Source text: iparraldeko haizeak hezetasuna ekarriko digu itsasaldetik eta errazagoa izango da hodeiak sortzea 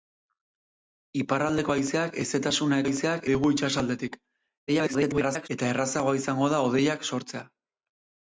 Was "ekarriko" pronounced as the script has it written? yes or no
no